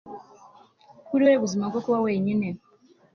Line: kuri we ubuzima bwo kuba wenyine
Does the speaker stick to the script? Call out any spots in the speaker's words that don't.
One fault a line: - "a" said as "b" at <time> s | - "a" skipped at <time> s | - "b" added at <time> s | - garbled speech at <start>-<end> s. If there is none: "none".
none